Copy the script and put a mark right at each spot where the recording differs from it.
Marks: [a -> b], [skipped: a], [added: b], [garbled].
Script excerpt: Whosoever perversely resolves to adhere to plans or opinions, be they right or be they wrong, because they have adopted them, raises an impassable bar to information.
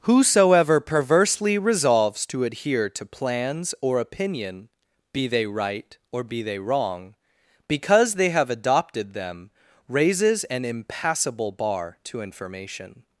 Whosoever perversely resolves to adhere to plans or [opinions, -> opinion] be they right or be they wrong, because they have adopted them, raises an impassable bar to information.